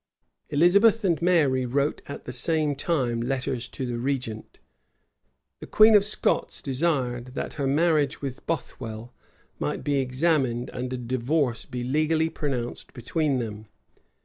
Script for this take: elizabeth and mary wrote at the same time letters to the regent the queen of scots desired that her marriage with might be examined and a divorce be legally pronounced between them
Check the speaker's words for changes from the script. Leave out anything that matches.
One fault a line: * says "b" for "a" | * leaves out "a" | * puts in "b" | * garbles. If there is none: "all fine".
* puts in "bothwell"